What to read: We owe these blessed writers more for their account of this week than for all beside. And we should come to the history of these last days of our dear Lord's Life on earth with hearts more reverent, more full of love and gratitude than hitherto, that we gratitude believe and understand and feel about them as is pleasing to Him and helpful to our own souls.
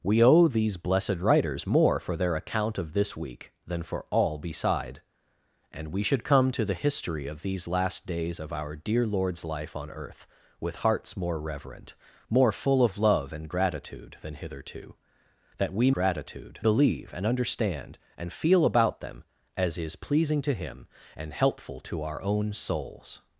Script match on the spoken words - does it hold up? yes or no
yes